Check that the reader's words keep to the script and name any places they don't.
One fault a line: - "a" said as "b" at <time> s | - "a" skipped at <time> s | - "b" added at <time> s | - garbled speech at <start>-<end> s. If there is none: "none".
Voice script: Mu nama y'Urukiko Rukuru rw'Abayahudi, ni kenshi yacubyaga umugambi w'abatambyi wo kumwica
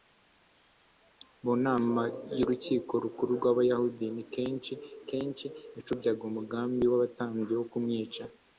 - "kenshi" added at 5.1 s